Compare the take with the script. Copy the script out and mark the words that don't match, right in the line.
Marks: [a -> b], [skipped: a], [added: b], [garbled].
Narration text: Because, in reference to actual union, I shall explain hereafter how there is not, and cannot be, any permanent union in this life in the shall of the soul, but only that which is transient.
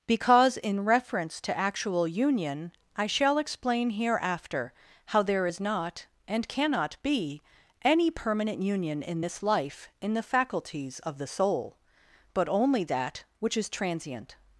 Because, in reference to actual union, I shall explain hereafter how there is not, and cannot be, any permanent union in this life in the [shall -> faculties] of the soul, but only that which is transient.